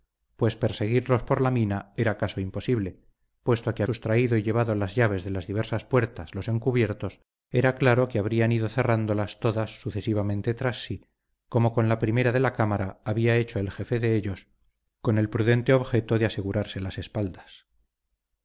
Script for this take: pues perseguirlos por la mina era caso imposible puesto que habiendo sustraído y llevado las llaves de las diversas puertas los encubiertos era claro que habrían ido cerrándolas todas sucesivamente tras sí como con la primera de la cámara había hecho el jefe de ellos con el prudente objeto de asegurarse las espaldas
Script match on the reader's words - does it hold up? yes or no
no